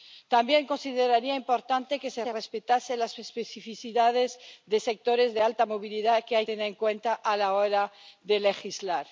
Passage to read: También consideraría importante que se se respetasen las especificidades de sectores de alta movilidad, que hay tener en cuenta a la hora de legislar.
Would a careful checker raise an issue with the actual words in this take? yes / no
no